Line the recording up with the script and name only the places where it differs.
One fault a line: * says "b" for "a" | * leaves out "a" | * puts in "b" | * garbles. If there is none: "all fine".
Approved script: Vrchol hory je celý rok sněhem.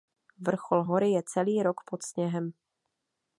* puts in "pod"